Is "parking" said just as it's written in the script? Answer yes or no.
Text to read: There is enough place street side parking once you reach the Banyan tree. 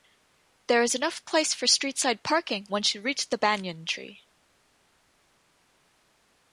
yes